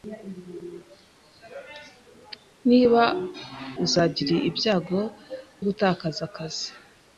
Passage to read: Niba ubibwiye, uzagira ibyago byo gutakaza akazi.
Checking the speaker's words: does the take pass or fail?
fail